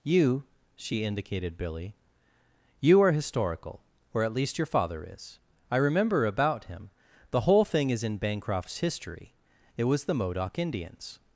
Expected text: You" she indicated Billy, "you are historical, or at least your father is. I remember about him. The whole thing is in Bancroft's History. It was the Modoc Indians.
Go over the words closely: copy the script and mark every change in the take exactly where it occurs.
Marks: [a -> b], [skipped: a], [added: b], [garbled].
You" she indicated Billy, "you are historical, or at least your father is. I remember about him. The whole thing is in Bancroft's History. It was the Modoc Indians.